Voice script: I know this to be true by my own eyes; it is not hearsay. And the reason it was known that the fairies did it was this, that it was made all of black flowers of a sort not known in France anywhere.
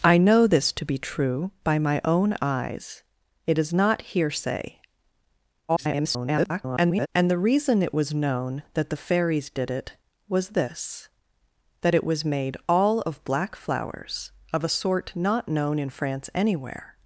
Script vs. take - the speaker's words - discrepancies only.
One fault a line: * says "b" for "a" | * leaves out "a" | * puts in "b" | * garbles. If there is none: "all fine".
* garbles